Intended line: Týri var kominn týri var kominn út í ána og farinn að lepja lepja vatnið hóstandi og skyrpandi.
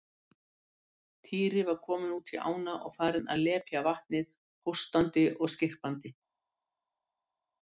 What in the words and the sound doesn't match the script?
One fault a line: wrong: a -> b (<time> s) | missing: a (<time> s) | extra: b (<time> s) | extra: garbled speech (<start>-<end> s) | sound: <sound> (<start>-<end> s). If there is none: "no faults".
missing: týri var kominn (2.1 s)
missing: lepja (3.8 s)